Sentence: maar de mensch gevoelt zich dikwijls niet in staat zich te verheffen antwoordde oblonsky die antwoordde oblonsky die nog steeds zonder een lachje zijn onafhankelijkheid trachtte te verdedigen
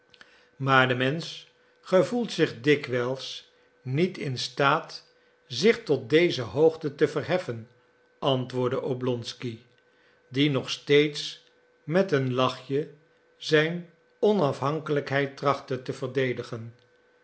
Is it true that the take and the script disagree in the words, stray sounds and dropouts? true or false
true